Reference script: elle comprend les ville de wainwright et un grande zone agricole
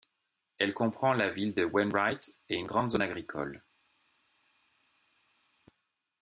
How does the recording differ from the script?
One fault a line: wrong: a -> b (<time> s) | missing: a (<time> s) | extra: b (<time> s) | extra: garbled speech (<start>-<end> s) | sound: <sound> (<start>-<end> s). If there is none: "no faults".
wrong: les -> la (1.1 s)
wrong: un -> une (2.5 s)